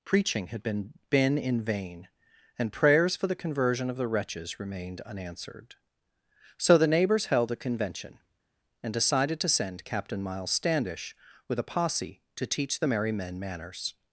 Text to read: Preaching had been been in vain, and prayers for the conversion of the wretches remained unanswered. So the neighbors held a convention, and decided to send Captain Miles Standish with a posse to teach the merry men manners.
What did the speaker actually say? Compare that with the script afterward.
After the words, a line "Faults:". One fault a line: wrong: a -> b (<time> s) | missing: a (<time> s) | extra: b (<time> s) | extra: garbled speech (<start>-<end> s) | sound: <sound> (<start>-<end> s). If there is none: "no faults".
Preaching had been been in vain, and prayers for the conversion of the wretches remained unanswered. So the neighbors held a convention, and decided to send Captain Miles Standish with a posse to teach the merry men manners.
Faults:
no faults